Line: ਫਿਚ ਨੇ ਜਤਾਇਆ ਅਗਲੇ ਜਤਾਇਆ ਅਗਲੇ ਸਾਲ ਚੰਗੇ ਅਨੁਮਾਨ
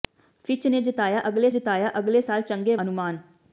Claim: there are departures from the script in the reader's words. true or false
false